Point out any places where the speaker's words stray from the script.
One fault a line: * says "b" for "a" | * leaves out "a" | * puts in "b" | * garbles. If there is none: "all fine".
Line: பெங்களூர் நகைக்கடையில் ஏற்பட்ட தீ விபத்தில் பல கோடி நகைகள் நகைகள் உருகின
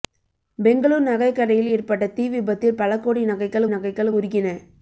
all fine